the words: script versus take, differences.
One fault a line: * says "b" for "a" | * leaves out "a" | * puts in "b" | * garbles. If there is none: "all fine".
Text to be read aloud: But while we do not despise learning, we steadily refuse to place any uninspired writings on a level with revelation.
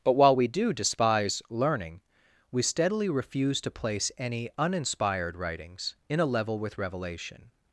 * leaves out "not"
* says "in" for "on"